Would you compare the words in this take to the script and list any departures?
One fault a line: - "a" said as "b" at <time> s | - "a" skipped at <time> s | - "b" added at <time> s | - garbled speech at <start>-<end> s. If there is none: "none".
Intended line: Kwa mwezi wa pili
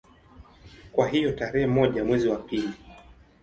- "hiyo tarehe moja" added at 1.1 s